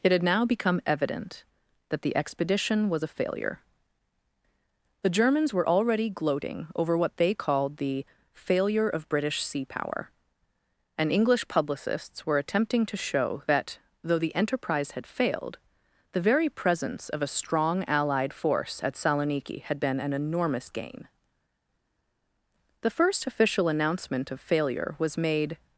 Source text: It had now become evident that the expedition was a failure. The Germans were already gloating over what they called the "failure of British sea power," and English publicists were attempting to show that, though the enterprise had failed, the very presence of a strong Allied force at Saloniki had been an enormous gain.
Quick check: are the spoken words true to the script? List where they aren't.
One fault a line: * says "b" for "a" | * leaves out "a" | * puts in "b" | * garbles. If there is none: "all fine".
* puts in "The first official announcement of failure was made"